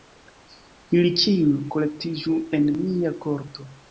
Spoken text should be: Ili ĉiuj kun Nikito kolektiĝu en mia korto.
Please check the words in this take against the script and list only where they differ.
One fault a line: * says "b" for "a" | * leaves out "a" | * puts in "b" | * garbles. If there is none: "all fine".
* leaves out "kun Nikito"